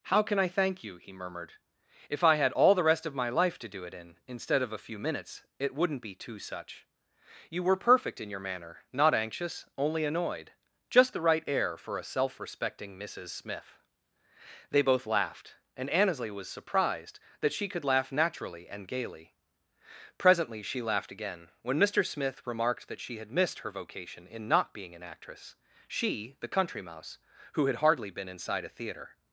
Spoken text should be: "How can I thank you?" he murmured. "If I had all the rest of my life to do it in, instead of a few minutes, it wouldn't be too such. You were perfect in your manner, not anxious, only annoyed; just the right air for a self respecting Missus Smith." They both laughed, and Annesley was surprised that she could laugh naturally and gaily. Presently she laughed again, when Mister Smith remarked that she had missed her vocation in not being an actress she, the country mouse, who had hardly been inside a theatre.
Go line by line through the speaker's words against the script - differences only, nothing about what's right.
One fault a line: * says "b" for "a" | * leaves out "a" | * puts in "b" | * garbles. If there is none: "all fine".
all fine